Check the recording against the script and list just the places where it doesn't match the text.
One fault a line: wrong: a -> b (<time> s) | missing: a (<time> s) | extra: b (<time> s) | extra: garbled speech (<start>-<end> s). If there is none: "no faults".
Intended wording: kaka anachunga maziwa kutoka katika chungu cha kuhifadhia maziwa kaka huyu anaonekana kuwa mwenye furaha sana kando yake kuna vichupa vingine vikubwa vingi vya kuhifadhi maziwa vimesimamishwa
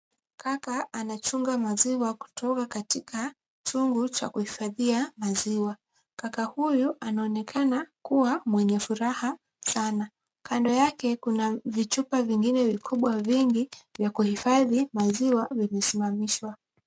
no faults